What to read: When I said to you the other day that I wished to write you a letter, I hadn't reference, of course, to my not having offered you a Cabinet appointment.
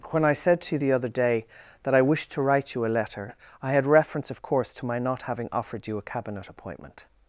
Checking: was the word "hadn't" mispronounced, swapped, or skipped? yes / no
yes